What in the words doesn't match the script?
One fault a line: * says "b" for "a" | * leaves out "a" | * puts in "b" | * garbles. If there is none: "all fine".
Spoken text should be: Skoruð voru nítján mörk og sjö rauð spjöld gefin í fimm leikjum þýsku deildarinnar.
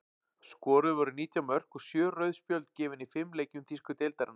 all fine